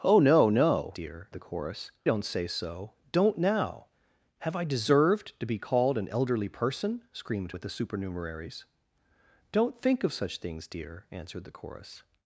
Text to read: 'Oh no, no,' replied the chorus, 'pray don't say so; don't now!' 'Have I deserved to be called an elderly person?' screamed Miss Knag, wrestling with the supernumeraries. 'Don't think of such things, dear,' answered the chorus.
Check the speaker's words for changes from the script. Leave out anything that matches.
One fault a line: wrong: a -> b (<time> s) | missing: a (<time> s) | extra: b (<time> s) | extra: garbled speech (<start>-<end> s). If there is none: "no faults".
wrong: replied -> dear (0.9 s)
missing: pray (1.9 s)
missing: Miss Knag wrestling (7.6 s)